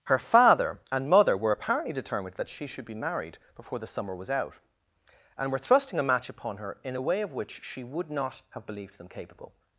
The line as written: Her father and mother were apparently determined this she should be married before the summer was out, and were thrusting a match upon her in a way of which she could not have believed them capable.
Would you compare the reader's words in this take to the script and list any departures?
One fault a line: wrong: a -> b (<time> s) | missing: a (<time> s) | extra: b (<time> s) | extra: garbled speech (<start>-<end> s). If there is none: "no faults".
wrong: this -> that (2.4 s)
wrong: could -> would (7.8 s)